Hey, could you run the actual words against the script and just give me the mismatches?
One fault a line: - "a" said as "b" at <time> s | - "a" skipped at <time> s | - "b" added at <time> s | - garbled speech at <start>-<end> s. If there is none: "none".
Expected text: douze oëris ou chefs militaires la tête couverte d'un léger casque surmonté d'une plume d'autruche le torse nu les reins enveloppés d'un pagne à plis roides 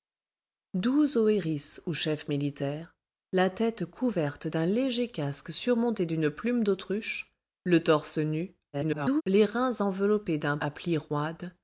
- garbled speech at 8.7-9.2 s
- "pagne" skipped at 10.6 s